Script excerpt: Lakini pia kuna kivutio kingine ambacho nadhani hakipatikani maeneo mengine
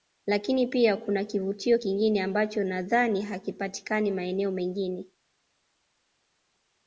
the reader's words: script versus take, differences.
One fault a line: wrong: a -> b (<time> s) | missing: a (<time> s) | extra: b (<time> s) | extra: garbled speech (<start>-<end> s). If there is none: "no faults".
no faults